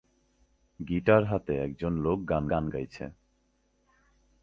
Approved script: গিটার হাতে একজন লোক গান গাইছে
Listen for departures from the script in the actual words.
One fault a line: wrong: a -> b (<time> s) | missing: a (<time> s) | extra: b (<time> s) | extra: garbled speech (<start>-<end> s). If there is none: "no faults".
extra: গান (2.5 s)